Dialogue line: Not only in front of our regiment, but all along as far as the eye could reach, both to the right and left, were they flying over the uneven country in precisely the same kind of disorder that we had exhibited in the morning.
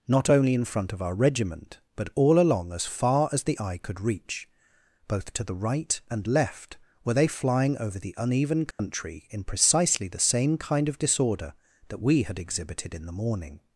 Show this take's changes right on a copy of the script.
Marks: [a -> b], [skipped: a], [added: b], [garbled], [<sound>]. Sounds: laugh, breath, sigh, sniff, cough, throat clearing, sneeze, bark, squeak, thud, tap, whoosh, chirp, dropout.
Not only in front of our regiment, but all along as far as the eye could reach, both to the right and left, were they flying over the uneven country [dropout] in precisely the same kind of disorder that we had exhibited in the morning.